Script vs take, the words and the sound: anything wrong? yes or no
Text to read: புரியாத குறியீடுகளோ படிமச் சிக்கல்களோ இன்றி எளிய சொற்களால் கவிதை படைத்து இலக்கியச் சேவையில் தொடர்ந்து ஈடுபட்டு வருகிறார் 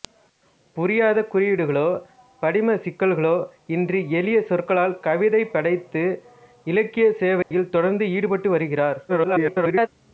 yes